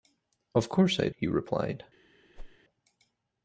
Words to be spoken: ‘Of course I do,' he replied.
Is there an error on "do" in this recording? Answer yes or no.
yes